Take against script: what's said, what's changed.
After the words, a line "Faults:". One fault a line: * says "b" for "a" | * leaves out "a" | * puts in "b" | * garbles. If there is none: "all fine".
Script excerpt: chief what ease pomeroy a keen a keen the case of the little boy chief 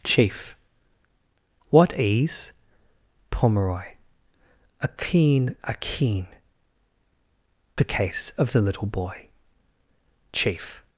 chief what ease pomeroy a keen a keen the case of the little boy chief
Faults:
all fine